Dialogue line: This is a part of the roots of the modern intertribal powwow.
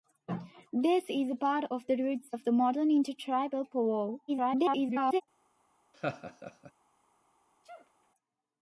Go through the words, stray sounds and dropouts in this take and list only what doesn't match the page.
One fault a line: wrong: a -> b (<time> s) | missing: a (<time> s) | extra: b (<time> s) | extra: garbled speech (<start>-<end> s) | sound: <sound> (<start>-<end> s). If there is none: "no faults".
extra: garbled speech (4.3-5.2 s)
sound: laugh (5.9-6.7 s)
sound: sneeze (7.6-8.1 s)